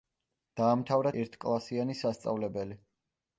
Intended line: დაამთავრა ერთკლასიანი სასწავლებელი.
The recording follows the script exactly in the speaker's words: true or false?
true